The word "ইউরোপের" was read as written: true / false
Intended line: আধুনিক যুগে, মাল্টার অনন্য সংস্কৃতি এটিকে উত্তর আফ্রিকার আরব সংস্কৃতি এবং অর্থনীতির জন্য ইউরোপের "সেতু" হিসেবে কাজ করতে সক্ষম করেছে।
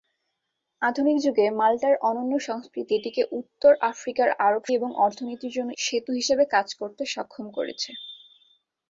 false